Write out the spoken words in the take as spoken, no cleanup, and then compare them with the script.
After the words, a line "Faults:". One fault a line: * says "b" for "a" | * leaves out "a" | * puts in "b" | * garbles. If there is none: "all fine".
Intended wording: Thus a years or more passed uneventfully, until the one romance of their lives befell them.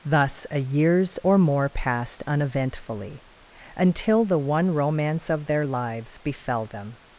Thus a years or more passed uneventfully, until the one romance of their lives befell them.
Faults:
all fine